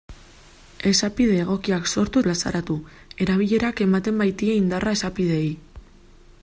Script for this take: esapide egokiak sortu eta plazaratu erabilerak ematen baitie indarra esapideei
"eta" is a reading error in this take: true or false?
true